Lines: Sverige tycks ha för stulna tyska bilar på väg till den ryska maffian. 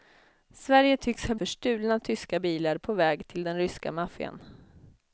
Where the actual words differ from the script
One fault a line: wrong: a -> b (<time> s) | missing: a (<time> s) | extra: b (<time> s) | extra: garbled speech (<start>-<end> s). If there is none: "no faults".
no faults